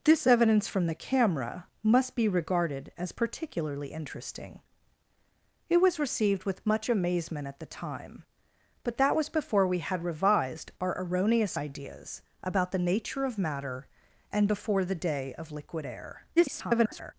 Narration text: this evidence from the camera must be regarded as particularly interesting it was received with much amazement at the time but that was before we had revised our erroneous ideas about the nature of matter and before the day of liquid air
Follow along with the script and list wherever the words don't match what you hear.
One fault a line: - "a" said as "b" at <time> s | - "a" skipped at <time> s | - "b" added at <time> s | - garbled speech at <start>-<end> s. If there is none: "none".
- garbled speech at 16.4-17.1 s